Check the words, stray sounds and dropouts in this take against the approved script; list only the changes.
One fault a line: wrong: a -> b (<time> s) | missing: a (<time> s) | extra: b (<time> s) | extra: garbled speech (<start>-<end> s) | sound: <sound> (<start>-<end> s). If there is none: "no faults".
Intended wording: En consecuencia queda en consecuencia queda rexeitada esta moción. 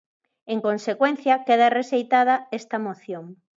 missing: en consecuencia queda (1.7 s)